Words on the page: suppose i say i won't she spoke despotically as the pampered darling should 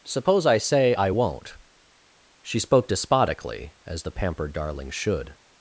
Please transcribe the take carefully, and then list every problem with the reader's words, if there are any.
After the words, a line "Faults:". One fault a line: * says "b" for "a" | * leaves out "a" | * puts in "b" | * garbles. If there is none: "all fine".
suppose i say i won't she spoke despotically as the pampered darling should
Faults:
all fine